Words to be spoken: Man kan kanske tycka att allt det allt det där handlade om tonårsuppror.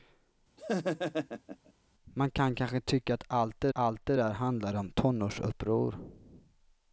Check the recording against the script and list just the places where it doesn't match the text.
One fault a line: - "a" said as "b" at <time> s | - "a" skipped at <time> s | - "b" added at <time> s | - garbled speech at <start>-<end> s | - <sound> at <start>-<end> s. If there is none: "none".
- laugh at 0.6-1.7 s